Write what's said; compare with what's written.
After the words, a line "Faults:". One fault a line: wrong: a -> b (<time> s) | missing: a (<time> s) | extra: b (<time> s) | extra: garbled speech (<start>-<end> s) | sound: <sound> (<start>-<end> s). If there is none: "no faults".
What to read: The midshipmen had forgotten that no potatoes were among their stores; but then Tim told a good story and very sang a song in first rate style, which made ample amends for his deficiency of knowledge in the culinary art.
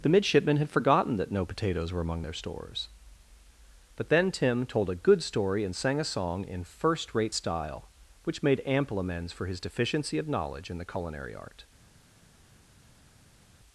The midshipmen had forgotten that no potatoes were among their stores; but then Tim told a good story and sang a song in first rate style, which made ample amends for his deficiency of knowledge in the culinary art.
Faults:
missing: very (5.7 s)